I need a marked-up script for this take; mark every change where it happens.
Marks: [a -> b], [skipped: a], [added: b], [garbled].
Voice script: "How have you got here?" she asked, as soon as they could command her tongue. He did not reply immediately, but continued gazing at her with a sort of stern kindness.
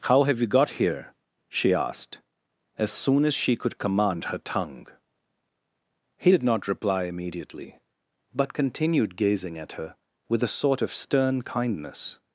"How have you got here?" she asked, as soon as [they -> she] could command her tongue. He did not reply immediately, but continued gazing at her with a sort of stern kindness.